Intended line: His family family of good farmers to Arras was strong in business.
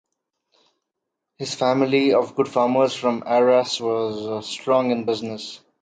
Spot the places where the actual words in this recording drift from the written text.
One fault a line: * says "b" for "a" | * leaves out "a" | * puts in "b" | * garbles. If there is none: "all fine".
* leaves out "family"
* says "from" for "to"